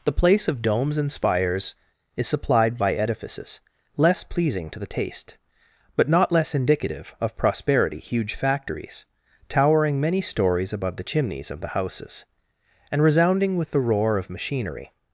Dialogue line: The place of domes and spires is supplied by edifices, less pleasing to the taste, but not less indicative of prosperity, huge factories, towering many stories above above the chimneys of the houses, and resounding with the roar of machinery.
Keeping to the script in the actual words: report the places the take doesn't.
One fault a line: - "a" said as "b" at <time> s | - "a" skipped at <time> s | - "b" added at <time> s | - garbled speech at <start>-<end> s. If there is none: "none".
- "above" skipped at 11.0 s